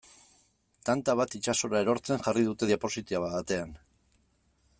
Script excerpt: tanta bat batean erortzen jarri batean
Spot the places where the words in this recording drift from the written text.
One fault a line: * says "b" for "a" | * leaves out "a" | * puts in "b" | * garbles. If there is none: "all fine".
* says "itsasora" for "batean"
* puts in "dute diapositiba"